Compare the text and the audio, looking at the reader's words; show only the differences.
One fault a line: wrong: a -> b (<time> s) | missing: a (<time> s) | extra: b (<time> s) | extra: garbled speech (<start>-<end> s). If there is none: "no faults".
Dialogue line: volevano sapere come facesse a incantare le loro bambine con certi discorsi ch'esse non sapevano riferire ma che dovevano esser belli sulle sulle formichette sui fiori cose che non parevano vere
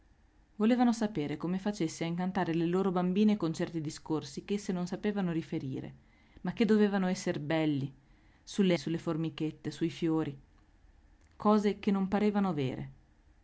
no faults